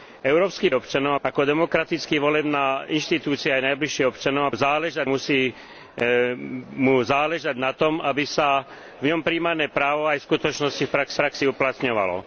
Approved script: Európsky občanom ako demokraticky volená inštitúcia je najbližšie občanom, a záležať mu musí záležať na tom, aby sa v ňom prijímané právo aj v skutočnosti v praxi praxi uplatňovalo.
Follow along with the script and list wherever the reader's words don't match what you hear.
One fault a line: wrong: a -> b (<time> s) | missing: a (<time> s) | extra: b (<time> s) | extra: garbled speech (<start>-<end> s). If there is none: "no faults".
no faults